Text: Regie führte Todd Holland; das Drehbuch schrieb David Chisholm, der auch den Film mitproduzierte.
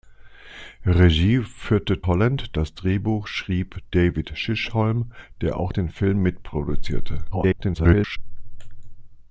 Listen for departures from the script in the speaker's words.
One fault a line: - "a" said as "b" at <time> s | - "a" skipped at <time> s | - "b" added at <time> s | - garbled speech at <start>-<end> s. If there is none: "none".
- "Todd" skipped at 2.0 s
- garbled speech at 7.3-8.2 s